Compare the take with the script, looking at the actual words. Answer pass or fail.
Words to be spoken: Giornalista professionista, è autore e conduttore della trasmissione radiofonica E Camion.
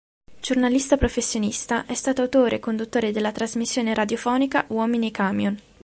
fail